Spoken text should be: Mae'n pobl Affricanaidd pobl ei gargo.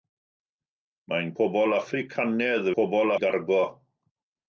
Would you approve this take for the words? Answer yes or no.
yes